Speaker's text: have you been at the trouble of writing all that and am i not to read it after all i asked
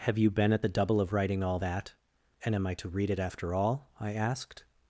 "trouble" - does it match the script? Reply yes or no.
no